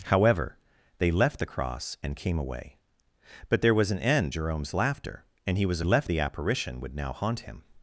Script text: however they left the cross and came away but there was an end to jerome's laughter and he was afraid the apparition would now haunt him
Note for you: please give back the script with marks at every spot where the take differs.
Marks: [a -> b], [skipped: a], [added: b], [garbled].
however they left the cross and came away but there was an end [skipped: to] jerome's laughter and he was [afraid -> left] the apparition would now haunt him